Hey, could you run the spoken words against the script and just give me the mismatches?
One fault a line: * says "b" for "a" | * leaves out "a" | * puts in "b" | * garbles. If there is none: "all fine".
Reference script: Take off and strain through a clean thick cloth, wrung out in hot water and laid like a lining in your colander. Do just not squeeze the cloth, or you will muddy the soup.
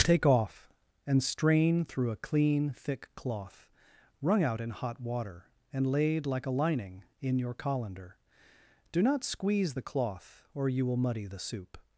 * leaves out "just"